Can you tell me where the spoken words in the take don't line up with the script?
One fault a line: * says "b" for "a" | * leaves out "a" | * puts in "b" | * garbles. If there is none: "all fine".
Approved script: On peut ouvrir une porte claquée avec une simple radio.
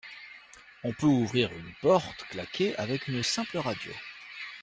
all fine